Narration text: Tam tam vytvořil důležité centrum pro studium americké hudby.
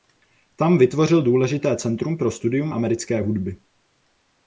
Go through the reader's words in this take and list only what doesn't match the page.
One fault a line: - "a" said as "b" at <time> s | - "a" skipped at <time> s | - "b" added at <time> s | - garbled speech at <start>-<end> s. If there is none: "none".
- "tam" skipped at 0.8 s